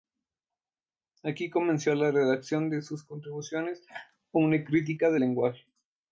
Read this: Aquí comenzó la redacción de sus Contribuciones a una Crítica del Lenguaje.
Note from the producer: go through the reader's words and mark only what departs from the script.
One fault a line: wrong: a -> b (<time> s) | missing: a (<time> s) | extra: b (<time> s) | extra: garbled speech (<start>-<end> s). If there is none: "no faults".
no faults